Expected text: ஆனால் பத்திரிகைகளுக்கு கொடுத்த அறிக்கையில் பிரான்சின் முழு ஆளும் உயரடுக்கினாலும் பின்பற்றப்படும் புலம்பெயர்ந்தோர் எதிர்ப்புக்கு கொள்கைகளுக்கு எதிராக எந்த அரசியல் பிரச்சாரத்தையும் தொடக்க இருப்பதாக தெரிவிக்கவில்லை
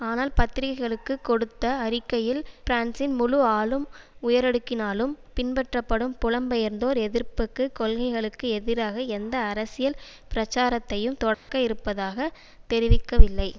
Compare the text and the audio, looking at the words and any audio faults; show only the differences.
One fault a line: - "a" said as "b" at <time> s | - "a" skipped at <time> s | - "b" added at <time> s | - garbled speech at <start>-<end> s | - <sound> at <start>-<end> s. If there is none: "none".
- dropout at 11.3-11.5 s